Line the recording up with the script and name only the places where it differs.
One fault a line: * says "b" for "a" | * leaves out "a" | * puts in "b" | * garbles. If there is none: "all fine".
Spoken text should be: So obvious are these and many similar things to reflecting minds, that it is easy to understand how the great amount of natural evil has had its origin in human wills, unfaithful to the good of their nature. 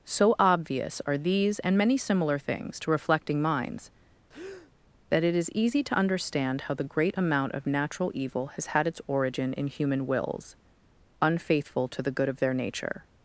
all fine